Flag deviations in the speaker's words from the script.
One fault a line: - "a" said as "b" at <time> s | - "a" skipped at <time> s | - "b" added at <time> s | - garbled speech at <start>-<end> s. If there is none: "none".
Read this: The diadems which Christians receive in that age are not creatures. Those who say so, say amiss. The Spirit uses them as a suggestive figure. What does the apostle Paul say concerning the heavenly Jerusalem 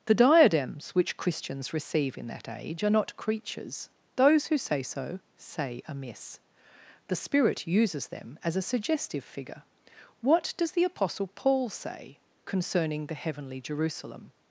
none